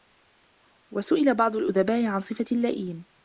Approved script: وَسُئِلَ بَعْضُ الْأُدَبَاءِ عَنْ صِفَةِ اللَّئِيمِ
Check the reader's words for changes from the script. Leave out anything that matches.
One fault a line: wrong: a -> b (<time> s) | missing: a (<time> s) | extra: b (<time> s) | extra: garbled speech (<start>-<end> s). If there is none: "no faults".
no faults